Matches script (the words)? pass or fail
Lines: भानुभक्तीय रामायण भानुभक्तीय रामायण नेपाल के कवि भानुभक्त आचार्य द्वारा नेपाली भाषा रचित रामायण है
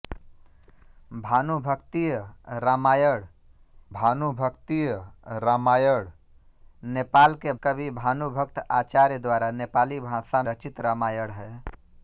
pass